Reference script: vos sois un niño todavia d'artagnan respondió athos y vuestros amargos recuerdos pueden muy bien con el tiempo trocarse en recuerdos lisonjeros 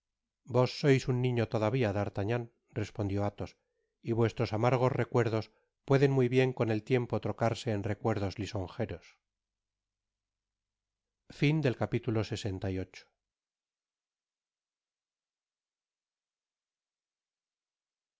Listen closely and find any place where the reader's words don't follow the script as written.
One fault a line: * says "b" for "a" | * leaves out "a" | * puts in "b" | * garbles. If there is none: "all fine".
all fine